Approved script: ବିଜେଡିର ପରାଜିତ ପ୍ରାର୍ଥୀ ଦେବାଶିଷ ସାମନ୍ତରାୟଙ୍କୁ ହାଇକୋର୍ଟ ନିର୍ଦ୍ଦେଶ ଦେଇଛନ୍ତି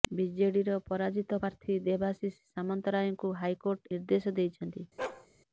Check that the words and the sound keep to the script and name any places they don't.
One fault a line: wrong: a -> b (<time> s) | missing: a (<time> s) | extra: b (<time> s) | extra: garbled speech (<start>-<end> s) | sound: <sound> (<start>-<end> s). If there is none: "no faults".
sound: bark (5.0-5.3 s)